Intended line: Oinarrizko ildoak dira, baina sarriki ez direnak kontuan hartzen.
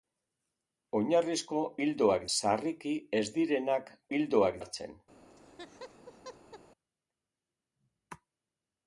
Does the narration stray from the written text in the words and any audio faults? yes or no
yes